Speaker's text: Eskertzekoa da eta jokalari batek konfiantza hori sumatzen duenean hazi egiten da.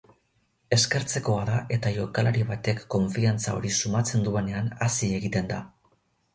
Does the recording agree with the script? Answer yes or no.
yes